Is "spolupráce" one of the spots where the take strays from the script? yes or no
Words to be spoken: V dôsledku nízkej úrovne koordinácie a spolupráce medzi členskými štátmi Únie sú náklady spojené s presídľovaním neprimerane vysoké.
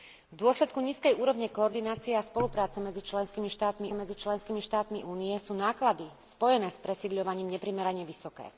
no